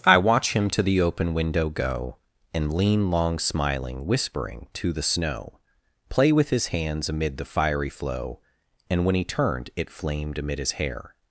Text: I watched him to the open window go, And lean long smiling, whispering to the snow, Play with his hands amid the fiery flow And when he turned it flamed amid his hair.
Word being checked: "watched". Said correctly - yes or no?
no